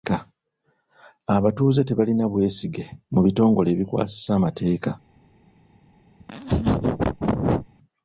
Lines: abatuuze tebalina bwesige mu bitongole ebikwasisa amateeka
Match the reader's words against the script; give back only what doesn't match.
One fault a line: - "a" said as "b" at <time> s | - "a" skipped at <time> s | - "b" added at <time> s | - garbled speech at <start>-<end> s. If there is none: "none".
none